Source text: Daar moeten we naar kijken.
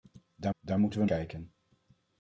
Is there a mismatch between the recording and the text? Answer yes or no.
yes